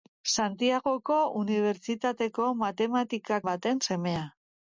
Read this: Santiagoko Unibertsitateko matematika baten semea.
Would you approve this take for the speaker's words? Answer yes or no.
yes